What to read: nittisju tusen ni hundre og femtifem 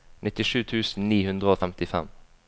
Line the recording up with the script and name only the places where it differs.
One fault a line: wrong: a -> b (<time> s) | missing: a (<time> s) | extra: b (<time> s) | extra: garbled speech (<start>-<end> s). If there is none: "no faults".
no faults